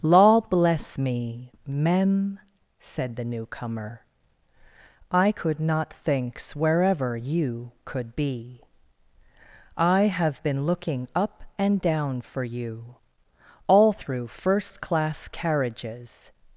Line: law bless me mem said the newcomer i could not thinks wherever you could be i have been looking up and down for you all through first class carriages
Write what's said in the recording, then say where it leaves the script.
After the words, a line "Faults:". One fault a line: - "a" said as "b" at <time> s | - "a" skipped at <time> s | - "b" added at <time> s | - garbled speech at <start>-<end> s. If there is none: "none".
law bless me mem said the newcomer i could not thinks wherever you could be i have been looking up and down for you all through first class carriages
Faults:
none